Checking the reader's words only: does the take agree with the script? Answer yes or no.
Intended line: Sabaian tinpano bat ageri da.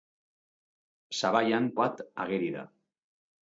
no